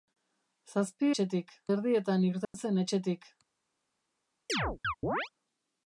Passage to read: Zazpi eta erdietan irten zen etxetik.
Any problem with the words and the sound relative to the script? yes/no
yes